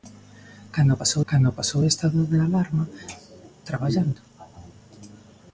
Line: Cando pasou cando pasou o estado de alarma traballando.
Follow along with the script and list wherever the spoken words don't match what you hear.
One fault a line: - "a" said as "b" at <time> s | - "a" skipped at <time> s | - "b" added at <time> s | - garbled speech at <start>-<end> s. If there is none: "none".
none